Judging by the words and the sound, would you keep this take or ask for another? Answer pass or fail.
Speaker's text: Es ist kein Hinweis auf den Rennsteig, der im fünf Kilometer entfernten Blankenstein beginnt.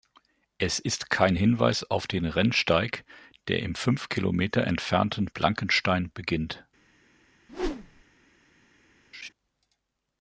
fail